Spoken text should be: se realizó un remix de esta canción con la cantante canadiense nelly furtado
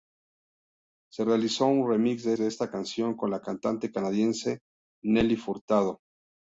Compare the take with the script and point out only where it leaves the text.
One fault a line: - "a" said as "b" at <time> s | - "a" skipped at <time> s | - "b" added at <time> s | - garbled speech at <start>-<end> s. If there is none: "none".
- "de" added at 2.4 s